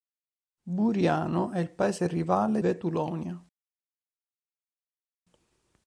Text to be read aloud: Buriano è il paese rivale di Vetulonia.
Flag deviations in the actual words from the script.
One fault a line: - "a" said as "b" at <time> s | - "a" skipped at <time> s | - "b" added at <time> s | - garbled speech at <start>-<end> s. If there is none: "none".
- "di" skipped at 2.6 s